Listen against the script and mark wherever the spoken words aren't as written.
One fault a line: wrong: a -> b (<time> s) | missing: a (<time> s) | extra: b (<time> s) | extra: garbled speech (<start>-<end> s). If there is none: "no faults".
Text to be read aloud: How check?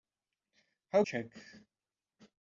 no faults